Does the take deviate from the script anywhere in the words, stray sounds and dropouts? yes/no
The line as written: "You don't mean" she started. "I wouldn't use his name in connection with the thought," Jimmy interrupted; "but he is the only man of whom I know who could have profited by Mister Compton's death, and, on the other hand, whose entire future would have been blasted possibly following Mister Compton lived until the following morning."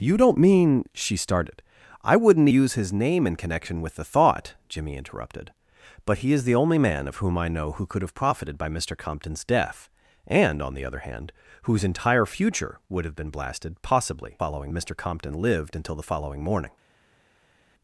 no